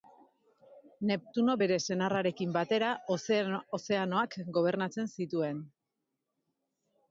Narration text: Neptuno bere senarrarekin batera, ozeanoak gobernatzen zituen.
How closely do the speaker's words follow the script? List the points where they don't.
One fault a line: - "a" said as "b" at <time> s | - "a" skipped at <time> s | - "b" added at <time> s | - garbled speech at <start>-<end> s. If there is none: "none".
none